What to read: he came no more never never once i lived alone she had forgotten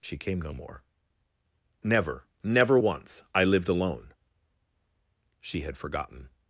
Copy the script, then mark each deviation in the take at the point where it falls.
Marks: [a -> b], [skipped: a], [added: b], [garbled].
[he -> she] came no more never never once i lived alone she had forgotten